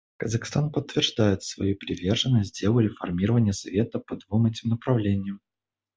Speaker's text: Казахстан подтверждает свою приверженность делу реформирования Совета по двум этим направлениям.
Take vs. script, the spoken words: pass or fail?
pass